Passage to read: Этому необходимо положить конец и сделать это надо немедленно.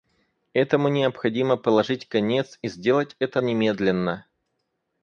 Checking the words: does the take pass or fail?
fail